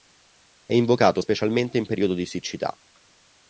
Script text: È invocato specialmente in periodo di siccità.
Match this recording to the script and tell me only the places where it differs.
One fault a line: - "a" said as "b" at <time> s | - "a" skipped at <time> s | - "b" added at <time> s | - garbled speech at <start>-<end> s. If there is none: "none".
none